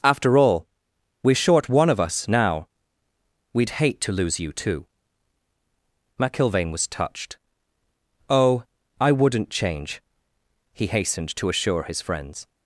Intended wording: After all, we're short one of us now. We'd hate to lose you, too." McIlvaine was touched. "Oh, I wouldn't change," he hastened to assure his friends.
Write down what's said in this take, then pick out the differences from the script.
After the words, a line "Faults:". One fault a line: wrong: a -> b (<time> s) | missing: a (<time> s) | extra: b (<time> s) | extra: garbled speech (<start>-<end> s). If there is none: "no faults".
After all, we're short one of us now. We'd hate to lose you, too." McIlvaine was touched. "Oh, I wouldn't change," he hastened to assure his friends.
Faults:
no faults